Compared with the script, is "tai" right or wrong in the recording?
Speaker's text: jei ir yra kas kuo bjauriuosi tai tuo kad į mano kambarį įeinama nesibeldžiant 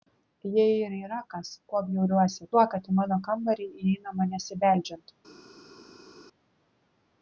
wrong